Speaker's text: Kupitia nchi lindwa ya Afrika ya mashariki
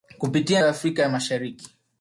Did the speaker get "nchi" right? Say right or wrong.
wrong